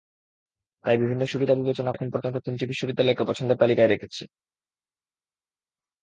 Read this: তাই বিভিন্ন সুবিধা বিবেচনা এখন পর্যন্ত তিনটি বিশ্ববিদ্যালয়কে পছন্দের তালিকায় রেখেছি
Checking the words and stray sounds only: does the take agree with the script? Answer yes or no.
yes